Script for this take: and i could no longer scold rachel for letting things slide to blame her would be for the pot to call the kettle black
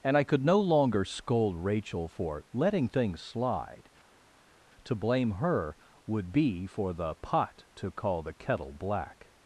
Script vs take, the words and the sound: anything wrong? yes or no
no